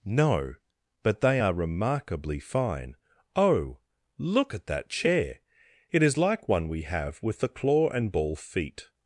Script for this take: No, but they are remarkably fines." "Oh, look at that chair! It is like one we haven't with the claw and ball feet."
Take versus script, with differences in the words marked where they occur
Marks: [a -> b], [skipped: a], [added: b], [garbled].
No, but they are remarkably [fines." -> fine] "Oh, look at that chair! It is like one we [haven't -> have] with the claw and ball feet."